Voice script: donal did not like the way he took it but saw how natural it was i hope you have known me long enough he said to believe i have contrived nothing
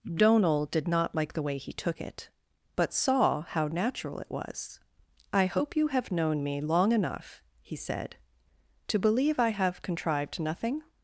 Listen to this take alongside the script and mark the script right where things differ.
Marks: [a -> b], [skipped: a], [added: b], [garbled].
donal did not like the way he took it but saw how natural it was i hope you have known me long enough he said to believe i have contrived nothing